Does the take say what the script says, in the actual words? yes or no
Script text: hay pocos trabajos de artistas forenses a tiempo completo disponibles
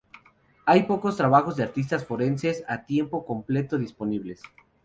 yes